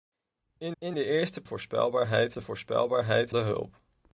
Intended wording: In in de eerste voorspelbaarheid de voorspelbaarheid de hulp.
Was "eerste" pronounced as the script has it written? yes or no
yes